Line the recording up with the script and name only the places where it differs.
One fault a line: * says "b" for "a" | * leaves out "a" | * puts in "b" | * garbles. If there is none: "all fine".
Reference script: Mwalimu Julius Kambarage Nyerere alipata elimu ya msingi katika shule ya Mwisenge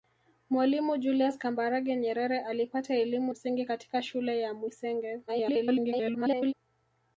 * leaves out "ya"
* garbles